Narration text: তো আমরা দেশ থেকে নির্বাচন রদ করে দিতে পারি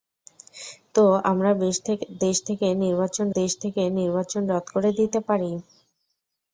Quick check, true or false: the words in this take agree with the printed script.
false